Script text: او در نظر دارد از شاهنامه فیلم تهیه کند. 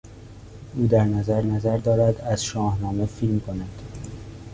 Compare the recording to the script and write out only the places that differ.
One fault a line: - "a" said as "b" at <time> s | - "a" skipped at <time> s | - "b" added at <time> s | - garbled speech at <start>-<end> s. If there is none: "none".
- "نظر" added at 1.4 s
- "تهیه" skipped at 3.4 s